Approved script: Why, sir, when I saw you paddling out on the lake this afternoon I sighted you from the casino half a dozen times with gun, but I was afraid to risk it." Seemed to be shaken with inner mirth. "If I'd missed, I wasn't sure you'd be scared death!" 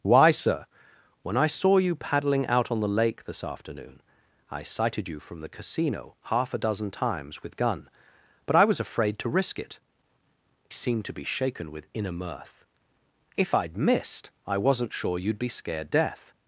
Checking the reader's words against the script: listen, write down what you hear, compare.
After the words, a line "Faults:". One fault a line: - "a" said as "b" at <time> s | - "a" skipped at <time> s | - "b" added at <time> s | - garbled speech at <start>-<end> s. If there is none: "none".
Why, sir, when I saw you paddling out on the lake this afternoon I sighted you from the casino half a dozen times with gun, but I was afraid to risk it." Seemed to be shaken with inner mirth. "If I'd missed, I wasn't sure you'd be scared death!"
Faults:
none